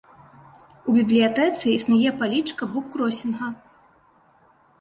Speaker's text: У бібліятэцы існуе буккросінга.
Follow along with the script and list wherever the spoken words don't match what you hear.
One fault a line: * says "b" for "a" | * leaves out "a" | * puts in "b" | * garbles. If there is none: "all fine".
* puts in "палічка"